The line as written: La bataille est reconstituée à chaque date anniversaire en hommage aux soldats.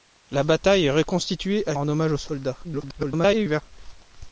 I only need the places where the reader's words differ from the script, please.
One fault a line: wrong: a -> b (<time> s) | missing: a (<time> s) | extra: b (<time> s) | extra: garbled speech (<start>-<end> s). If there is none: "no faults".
missing: chaque date anniversaire (1.8 s)
extra: garbled speech (2.6-3.6 s)